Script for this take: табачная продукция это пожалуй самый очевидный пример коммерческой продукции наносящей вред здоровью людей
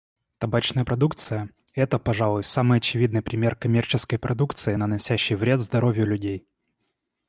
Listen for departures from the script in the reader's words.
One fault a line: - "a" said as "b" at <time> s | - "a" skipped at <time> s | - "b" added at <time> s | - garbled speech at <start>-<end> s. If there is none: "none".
none